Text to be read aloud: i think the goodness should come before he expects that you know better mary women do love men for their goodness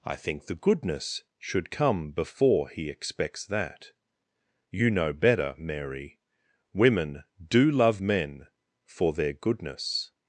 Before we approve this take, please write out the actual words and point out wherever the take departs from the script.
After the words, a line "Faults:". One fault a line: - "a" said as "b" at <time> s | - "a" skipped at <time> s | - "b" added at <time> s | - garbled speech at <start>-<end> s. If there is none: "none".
i think the goodness should come before he expects that you know better mary women do love men for their goodness
Faults:
none